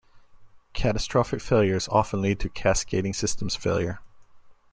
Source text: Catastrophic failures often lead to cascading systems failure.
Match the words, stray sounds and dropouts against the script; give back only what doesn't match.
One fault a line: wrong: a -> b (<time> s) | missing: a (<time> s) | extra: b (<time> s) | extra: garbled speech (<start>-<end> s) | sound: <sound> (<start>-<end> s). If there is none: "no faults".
no faults